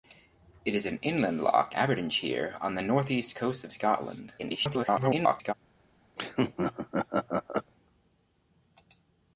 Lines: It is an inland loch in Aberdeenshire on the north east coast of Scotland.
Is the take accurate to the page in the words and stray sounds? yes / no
no